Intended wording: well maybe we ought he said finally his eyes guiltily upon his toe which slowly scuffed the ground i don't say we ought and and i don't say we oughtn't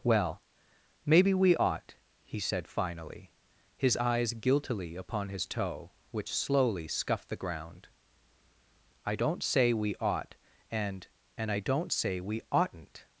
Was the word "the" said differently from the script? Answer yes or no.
no